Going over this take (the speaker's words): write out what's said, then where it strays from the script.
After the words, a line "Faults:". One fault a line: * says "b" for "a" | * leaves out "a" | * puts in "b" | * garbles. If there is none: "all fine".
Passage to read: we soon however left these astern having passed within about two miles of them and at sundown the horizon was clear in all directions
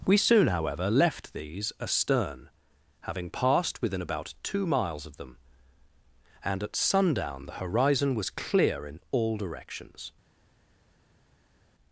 we soon however left these astern having passed within about two miles of them and at sundown the horizon was clear in all directions
Faults:
all fine